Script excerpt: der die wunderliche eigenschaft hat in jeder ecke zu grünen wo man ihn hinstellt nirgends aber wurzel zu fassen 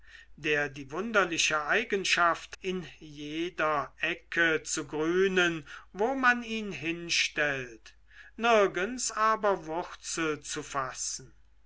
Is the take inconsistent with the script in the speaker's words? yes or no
yes